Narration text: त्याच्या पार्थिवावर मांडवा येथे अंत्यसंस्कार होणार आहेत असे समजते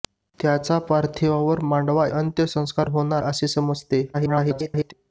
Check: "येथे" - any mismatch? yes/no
yes